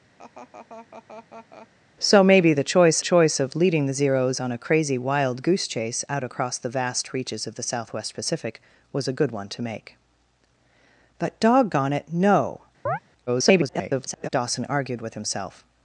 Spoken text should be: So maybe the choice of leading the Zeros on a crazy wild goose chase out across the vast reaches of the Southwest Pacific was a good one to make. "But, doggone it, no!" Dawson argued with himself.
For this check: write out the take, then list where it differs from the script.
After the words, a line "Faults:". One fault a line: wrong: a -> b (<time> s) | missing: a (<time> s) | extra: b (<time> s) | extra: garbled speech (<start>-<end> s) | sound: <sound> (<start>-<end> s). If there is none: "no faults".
So maybe the choice choice of leading the Zeros on a crazy wild goose chase out across the vast reaches of the Southwest Pacific was a good one to make. "But, doggone it, no!" [garbled] Dawson argued with himself.
Faults:
sound: laugh (0.2-1.7 s)
extra: choice (3.0 s)
sound: chirp (12.9-13.0 s)
extra: garbled speech (13.3-14.3 s)